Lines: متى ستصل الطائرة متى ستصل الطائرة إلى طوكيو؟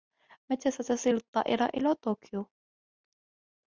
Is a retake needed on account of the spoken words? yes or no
yes